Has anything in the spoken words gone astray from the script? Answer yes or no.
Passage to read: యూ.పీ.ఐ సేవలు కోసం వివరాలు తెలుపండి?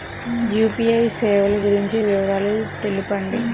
yes